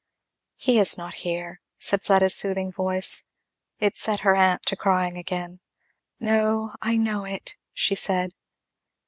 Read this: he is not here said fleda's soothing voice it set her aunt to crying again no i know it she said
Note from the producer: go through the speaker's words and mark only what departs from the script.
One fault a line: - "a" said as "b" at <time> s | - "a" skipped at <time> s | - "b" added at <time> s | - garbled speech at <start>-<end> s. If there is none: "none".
none